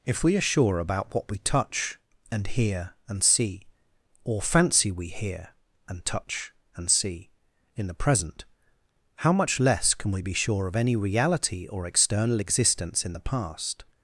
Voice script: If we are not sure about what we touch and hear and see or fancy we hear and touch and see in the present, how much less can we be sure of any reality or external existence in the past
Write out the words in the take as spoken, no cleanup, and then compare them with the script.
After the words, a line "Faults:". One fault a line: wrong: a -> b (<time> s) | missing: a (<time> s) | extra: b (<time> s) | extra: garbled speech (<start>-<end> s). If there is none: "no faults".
If we are sure about what we touch and hear and see or fancy we hear and touch and see in the present, how much less can we be sure of any reality or external existence in the past
Faults:
missing: not (0.4 s)